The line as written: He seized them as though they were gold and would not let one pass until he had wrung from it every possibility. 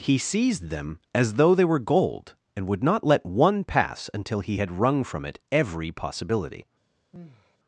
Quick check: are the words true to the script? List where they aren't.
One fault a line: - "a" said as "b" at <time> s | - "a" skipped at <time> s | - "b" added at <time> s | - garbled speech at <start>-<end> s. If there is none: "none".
none